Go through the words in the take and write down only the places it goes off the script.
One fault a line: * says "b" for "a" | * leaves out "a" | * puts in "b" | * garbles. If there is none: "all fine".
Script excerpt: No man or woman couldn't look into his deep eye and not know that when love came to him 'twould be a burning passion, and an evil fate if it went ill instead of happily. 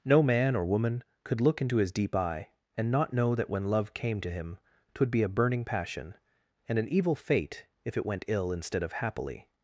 * says "could" for "couldn't"